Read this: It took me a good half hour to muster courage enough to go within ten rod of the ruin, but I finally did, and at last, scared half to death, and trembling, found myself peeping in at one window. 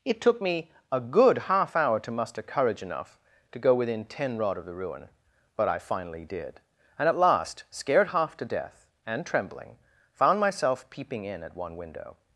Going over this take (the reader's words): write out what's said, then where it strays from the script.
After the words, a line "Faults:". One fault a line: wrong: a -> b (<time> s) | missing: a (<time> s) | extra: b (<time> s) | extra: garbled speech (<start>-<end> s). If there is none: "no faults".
It took me a good half hour to muster courage enough to go within ten rod of the ruin, but I finally did, and at last, scared half to death, and trembling, found myself peeping in at one window.
Faults:
no faults